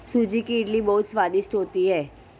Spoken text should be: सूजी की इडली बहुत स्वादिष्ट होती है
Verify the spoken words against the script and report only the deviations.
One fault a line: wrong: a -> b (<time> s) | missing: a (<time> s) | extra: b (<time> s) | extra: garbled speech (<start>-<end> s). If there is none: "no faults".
no faults